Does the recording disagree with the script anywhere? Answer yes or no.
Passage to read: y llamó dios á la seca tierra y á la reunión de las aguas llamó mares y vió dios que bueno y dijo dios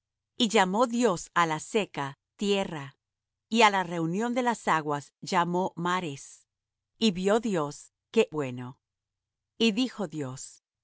no